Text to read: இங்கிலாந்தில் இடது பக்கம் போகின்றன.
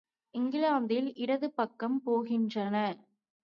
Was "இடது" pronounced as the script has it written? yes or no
yes